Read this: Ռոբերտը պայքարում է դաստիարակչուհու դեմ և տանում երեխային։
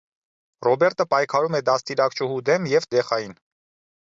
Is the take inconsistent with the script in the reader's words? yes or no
yes